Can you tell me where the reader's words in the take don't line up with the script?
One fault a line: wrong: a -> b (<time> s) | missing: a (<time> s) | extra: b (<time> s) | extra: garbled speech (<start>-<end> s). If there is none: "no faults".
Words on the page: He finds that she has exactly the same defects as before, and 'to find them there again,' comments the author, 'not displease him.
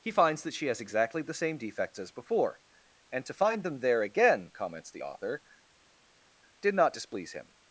extra: did (6.6 s)